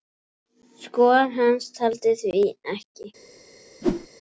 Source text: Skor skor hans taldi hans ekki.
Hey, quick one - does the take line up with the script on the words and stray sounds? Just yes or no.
no